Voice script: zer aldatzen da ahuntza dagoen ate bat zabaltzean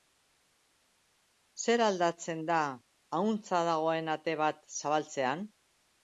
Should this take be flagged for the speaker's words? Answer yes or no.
no